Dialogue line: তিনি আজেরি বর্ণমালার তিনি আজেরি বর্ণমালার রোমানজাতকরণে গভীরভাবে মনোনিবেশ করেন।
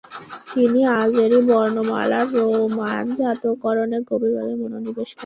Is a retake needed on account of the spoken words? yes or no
yes